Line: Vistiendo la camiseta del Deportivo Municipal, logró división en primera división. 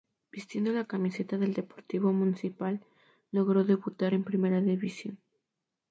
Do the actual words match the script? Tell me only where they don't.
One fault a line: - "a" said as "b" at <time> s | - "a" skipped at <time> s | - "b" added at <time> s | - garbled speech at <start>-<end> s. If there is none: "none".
- "división" said as "debutar" at 3.6 s